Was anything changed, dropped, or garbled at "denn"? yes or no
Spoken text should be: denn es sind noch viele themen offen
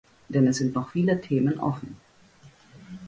no